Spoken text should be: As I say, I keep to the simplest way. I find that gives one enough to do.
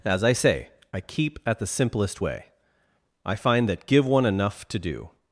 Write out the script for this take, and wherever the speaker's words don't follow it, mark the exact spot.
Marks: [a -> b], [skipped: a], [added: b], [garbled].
As I say, I keep [to -> at] the simplest way. I find that [gives -> give] one enough to do.